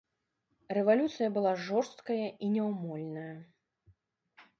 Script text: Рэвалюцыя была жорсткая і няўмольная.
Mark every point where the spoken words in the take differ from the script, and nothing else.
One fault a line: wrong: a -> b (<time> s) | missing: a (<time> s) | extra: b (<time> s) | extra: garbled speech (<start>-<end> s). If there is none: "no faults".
no faults